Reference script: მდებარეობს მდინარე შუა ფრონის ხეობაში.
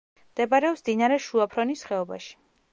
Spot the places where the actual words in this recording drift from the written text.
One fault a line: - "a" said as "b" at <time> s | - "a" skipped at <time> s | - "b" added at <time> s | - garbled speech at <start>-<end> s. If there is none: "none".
none